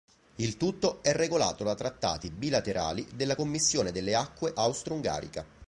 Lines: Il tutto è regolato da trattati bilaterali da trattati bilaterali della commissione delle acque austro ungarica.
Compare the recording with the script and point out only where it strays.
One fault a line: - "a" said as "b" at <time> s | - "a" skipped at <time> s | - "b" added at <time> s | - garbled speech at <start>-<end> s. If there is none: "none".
- "da trattati bilaterali" skipped at 3.1 s